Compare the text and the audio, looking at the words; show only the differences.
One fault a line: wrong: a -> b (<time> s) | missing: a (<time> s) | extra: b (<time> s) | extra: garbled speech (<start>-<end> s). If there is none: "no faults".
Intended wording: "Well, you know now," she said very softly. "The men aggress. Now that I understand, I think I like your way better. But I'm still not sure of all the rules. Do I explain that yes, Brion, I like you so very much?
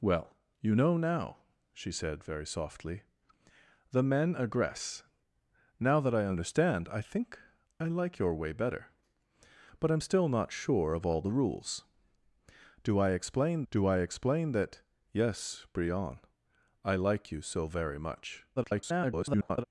extra: do I explain (13.7 s)
extra: garbled speech (18.6-19.6 s)